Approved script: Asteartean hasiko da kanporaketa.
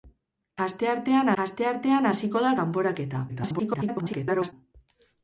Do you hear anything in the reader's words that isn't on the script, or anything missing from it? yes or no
yes